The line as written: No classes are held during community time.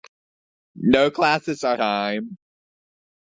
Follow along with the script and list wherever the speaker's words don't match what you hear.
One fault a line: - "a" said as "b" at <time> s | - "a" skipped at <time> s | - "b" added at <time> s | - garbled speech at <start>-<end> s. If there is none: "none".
- "held during community" skipped at 1.8 s